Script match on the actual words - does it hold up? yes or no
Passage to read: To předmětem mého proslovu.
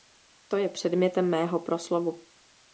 no